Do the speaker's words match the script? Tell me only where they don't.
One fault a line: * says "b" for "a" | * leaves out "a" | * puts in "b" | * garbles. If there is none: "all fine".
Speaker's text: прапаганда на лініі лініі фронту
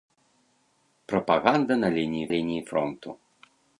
all fine